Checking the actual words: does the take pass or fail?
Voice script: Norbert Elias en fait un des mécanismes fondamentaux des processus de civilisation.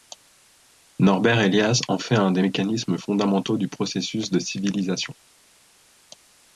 fail